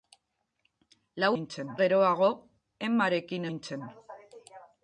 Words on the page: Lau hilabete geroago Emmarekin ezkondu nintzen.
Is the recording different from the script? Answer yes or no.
yes